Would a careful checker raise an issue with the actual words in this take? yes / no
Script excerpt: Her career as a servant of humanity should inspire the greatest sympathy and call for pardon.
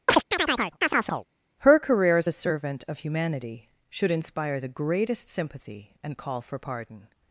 no